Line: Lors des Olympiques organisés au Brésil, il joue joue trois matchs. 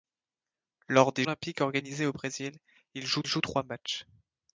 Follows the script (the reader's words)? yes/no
yes